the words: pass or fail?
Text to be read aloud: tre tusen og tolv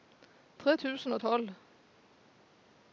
pass